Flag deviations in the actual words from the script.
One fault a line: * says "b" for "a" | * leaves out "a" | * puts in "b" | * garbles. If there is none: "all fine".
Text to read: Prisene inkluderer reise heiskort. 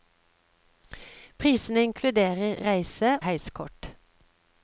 all fine